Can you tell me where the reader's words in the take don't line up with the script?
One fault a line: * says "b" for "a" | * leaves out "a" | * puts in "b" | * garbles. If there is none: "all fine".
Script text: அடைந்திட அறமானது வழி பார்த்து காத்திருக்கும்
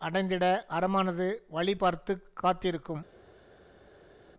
all fine